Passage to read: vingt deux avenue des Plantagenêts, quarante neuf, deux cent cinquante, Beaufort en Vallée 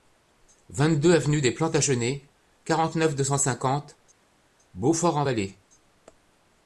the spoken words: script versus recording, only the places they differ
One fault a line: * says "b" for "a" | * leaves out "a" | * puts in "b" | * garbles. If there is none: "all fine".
all fine